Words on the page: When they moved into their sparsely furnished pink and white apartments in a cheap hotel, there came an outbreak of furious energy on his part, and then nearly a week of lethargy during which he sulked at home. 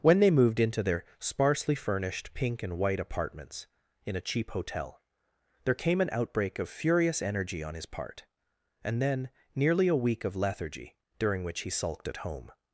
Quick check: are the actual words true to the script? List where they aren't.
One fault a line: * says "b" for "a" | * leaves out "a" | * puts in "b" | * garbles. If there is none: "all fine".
all fine